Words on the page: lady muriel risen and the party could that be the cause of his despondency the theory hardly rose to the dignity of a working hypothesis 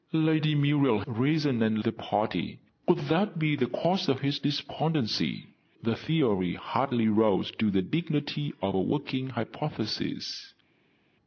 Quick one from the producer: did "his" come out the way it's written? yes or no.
yes